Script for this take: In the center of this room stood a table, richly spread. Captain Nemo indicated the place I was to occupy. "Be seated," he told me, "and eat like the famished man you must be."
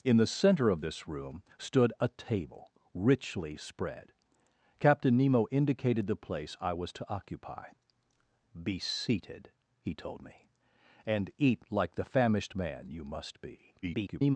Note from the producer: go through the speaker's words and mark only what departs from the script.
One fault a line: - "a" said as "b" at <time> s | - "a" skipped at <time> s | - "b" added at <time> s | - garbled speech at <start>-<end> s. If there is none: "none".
- garbled speech at 13.8-14.4 s